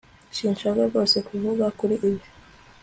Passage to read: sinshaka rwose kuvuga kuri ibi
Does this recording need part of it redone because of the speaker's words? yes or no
no